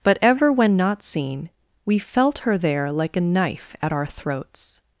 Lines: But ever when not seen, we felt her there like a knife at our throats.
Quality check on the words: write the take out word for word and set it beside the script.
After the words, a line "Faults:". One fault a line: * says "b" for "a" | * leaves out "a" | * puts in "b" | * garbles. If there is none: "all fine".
But ever when not seen, we felt her there like a knife at our throats.
Faults:
all fine